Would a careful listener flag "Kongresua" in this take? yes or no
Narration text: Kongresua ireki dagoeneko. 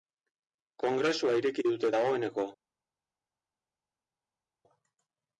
no